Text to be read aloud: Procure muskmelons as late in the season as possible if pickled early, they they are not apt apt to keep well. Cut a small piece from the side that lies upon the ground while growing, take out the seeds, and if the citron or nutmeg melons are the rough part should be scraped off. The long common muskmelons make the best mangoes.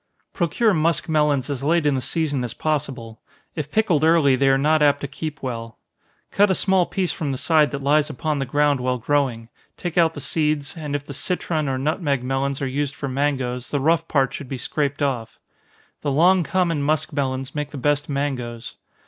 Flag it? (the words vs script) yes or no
yes